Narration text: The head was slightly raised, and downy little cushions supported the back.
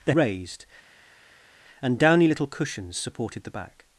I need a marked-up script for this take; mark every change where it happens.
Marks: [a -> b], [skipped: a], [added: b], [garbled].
The [skipped: head was slightly] raised, and downy little cushions supported the back.